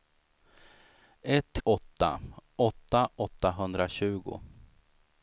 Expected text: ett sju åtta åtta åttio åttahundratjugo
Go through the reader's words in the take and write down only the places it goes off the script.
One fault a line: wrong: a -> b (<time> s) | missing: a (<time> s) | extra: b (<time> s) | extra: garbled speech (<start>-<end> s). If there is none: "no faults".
missing: sju (1.6 s)
missing: åttio (3.1 s)